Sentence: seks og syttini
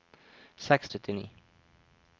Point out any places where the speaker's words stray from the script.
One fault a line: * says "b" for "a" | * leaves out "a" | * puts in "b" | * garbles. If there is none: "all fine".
all fine